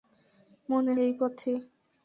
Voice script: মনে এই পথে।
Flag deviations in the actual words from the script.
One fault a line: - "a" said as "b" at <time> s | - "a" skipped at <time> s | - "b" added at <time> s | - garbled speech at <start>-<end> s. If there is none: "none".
none